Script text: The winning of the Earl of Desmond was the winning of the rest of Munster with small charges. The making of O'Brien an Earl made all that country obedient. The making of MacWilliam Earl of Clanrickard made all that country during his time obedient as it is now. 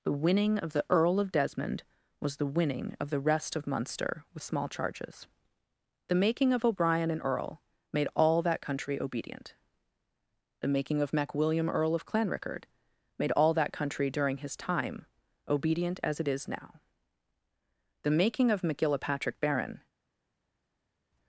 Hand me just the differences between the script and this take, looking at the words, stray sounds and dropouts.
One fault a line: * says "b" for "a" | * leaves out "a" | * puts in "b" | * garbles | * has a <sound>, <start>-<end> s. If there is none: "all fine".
* puts in "The making of MacGillapatrick Baron"